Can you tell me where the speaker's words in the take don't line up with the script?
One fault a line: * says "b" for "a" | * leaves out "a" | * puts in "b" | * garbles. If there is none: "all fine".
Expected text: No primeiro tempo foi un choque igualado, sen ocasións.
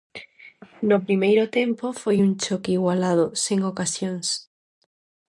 all fine